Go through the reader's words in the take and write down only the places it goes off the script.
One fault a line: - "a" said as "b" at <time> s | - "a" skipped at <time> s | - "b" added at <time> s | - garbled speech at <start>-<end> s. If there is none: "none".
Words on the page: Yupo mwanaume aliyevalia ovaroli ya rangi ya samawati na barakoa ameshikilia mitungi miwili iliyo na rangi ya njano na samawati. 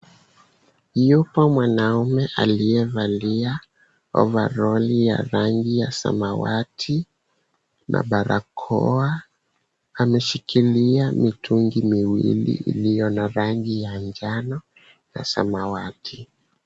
none